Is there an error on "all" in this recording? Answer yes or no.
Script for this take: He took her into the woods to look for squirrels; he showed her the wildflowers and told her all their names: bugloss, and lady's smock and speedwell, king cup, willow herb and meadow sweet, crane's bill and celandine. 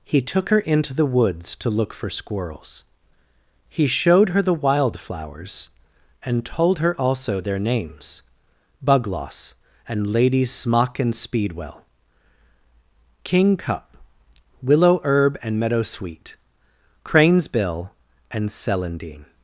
yes